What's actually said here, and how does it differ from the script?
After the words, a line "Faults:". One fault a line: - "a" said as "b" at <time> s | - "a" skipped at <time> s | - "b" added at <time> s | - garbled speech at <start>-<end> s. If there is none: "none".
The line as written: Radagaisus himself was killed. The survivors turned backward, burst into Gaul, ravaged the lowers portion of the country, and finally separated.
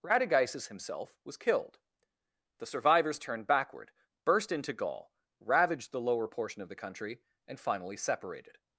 Radagaisus himself was killed. The survivors turned backward, burst into Gaul, ravaged the lower portion of the country, and finally separated.
Faults:
- "lowers" said as "lower" at 6.0 s